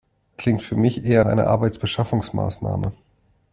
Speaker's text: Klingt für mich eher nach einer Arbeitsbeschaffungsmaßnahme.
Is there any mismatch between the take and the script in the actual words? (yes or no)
yes